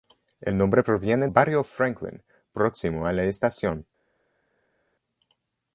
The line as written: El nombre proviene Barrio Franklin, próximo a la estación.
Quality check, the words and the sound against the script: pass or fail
pass